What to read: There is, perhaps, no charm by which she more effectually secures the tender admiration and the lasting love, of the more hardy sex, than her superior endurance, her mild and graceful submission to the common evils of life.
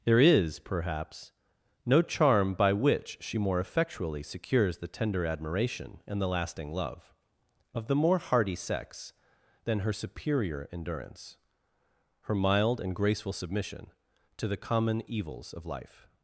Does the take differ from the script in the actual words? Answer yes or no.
no